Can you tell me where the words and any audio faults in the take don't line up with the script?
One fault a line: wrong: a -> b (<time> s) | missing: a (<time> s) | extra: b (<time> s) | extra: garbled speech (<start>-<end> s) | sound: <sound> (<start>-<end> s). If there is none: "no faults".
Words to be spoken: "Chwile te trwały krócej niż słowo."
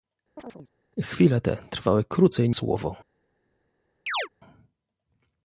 sound: chirp (0.4-0.7 s)
missing: niż (2.5 s)
sound: chirp (4.1-4.3 s)